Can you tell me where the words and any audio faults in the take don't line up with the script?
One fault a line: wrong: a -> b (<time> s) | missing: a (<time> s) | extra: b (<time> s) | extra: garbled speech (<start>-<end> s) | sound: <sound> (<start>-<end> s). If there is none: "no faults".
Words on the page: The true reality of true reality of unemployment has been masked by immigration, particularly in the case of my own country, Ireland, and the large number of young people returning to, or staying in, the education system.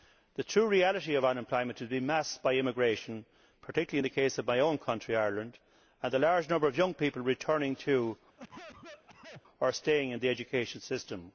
missing: true reality of (1.2 s)
sound: cough (8.4-9.4 s)